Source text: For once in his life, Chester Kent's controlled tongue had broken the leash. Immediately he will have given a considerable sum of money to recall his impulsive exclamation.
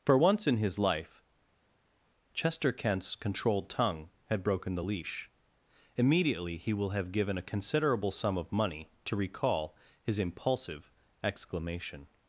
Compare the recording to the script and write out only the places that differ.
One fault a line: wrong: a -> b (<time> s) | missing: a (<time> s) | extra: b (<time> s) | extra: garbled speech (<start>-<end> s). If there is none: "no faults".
no faults